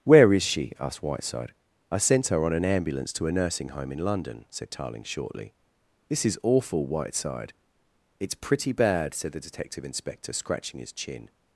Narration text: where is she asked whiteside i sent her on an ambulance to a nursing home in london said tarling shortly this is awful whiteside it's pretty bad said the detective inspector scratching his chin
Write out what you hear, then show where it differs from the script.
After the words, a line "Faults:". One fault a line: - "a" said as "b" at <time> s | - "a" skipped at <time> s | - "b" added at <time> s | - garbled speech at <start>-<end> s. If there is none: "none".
where is she asked whiteside i sent her on an ambulance to a nursing home in london said tarling shortly this is awful whiteside it's pretty bad said the detective inspector scratching his chin
Faults:
none